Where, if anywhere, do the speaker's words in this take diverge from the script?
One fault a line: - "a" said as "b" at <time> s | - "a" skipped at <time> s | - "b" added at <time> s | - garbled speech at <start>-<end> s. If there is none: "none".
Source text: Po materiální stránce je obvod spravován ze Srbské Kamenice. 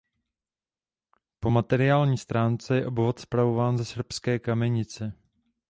none